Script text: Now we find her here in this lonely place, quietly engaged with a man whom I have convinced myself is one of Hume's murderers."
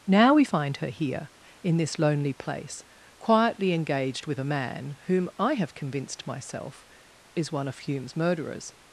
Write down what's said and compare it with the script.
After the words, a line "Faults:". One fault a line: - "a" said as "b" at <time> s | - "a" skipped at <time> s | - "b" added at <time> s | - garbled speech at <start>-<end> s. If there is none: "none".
Now we find her here in this lonely place, quietly engaged with a man whom I have convinced myself is one of Hume's murderers."
Faults:
none